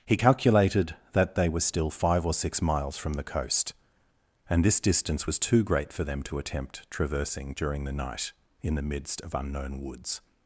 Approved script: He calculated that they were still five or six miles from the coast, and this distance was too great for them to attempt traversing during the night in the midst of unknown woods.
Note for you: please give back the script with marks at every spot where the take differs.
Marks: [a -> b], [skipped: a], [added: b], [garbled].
He calculated that they were still five or six miles from the coast, and this distance was too great for them to attempt traversing during the night in the midst of unknown woods.